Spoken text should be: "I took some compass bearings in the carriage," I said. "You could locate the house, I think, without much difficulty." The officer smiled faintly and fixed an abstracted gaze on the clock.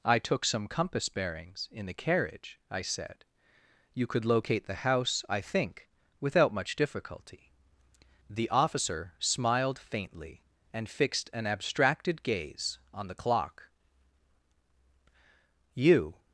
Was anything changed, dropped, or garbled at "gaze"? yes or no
no